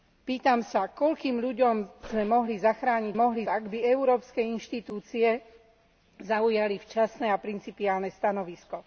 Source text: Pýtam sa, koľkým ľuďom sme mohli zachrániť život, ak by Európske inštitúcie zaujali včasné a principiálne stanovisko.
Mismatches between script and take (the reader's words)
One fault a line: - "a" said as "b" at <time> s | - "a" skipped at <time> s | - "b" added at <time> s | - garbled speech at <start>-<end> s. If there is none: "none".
- "život" said as "mohli" at 3.1 s